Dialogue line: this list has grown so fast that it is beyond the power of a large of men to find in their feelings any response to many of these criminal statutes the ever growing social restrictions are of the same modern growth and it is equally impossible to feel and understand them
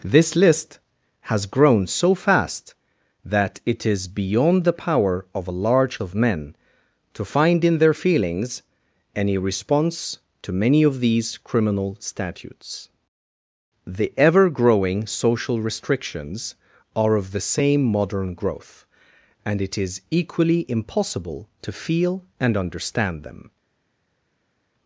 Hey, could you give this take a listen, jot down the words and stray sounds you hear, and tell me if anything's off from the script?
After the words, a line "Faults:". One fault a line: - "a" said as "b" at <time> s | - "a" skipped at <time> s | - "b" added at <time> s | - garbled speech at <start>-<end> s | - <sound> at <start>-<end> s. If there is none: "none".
this list has grown so fast that it is beyond the power of a large of men to find in their feelings any response to many of these criminal statutes the ever growing social restrictions are of the same modern growth and it is equally impossible to feel and understand them
Faults:
none